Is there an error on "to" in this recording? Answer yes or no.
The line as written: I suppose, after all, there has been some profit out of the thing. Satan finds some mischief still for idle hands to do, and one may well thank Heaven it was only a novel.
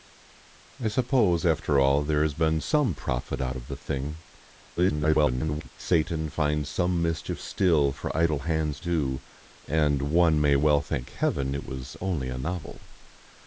yes